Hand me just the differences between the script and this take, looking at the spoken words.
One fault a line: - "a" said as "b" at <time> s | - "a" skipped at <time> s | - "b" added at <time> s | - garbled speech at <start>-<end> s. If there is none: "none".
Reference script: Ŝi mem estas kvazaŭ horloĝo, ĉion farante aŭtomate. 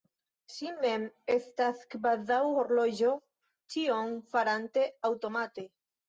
none